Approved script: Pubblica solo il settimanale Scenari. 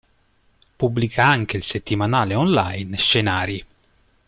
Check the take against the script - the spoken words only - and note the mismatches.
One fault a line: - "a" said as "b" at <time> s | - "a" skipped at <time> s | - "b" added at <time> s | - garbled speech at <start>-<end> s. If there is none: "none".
- "solo" said as "anche" at 1.3 s
- "online" added at 2.3 s